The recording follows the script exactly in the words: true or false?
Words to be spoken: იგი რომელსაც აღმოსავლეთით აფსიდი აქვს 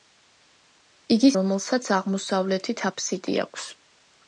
true